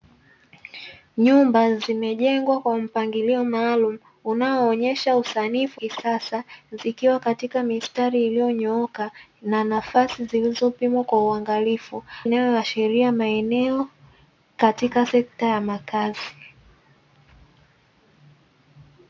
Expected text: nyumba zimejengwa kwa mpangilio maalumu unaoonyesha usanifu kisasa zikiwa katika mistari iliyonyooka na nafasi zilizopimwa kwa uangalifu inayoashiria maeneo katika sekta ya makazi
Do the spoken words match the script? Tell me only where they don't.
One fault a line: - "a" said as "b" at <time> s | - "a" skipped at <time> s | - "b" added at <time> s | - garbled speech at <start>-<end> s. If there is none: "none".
none